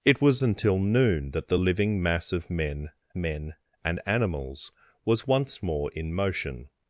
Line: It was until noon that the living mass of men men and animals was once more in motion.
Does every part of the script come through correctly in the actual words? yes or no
yes